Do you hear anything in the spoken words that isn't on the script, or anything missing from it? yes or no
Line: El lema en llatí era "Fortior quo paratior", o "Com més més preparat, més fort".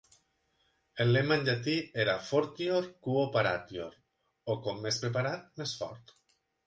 yes